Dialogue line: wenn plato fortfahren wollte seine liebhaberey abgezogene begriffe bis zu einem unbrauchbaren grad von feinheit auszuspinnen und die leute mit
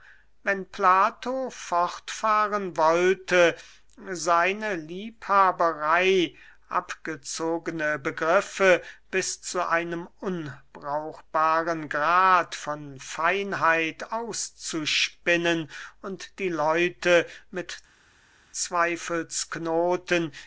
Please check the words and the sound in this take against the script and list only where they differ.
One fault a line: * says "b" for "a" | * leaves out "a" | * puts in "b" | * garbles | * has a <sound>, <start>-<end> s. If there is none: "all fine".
all fine